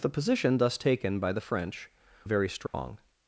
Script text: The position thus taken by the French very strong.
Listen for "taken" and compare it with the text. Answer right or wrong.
right